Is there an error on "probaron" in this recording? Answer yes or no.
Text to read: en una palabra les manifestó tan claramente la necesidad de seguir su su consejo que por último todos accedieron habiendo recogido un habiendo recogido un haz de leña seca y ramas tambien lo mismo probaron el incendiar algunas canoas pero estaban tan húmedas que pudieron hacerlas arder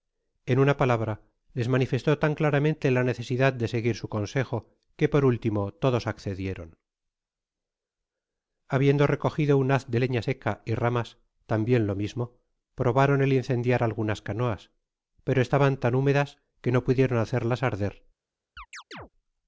no